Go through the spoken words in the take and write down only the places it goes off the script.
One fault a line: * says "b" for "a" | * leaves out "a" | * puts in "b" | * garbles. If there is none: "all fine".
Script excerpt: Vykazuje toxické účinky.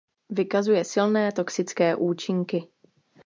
* puts in "silné"